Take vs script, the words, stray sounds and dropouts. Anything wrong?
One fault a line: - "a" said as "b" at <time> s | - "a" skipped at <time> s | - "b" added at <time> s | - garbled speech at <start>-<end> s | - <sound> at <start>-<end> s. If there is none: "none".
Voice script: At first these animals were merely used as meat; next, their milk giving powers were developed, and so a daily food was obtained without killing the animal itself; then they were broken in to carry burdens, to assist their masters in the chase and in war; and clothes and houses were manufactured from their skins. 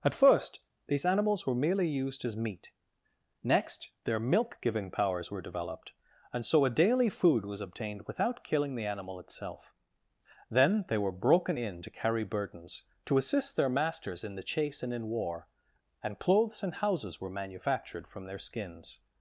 none